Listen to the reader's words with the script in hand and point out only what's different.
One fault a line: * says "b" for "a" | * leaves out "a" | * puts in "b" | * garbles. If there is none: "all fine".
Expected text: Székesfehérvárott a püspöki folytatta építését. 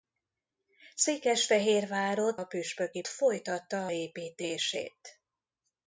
all fine